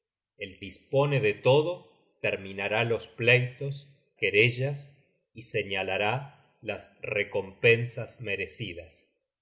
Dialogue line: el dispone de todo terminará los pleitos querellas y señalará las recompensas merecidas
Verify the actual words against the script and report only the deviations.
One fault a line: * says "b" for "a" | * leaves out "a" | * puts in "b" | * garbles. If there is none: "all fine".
all fine